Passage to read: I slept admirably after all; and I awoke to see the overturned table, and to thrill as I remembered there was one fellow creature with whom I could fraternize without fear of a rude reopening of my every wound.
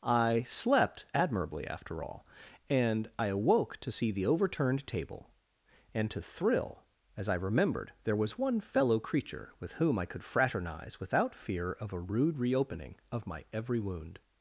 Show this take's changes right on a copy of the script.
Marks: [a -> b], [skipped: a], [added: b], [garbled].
I slept admirably after all; and I awoke to see the overturned table, and to thrill as I remembered there was one fellow creature with whom I could fraternize without fear of a rude reopening of my every wound.